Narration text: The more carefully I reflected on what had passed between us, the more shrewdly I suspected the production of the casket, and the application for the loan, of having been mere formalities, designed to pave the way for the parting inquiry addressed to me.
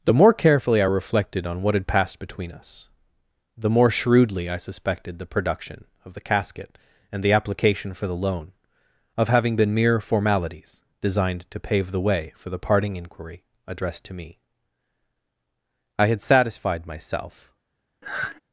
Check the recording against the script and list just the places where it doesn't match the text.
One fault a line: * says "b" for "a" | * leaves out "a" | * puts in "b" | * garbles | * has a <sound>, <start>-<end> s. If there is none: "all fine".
* puts in "I had satisfied myself"
* has a sigh, 18.0-18.4 s